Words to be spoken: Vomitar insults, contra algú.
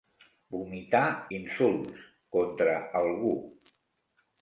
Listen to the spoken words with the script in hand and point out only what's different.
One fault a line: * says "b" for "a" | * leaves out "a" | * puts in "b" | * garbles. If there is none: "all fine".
all fine